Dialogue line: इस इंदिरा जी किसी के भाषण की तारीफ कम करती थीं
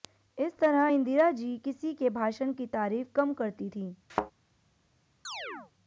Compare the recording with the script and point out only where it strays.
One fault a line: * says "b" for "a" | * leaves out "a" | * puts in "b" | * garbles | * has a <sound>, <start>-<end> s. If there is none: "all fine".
* puts in "तरह"
* has a thud, 4.1-4.3 s
* has a chirp, 5.2-5.7 s